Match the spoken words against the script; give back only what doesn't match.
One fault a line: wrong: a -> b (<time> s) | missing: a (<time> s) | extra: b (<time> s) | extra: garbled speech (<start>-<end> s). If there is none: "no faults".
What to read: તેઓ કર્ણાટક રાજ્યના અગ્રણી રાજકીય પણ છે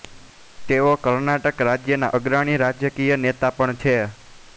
extra: નેતા (3.2 s)